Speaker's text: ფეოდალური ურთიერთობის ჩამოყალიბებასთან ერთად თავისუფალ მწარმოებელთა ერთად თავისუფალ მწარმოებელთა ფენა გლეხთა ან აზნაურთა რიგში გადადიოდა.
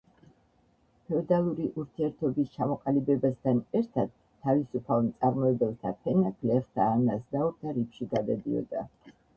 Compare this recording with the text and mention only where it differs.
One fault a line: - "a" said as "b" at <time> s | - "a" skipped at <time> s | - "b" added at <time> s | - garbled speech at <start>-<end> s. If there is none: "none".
- "ერთად თავისუფალ მწარმოებელთა" skipped at 5.9 s